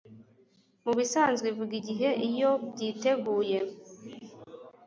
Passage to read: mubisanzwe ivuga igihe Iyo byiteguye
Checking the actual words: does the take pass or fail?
pass